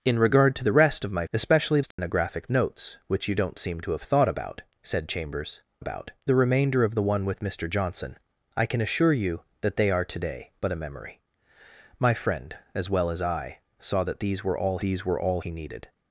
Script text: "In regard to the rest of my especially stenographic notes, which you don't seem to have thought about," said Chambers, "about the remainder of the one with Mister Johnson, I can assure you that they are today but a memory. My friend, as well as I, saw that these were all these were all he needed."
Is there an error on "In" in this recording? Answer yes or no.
no